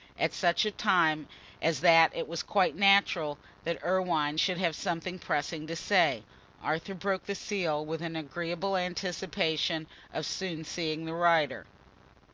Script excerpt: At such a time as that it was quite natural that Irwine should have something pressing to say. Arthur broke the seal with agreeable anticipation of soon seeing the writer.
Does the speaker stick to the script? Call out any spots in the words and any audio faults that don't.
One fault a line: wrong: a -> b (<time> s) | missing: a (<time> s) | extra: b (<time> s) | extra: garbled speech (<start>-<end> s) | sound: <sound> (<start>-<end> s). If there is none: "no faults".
extra: an (8.0 s)